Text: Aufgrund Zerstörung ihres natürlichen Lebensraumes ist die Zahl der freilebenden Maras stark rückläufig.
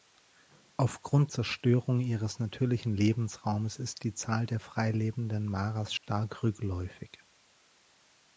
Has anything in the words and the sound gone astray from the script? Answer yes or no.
yes